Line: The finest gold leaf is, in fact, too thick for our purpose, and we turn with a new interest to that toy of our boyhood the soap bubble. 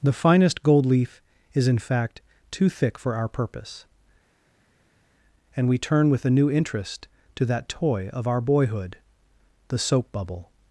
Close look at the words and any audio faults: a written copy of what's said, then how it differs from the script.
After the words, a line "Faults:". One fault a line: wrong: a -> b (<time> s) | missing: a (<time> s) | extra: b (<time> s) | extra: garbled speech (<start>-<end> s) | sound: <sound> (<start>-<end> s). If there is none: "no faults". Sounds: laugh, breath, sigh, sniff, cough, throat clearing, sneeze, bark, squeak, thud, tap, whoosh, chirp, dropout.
The finest gold leaf is, in fact, too thick for our purpose, and we turn with a new interest to that toy of our boyhood the soap bubble.
Faults:
no faults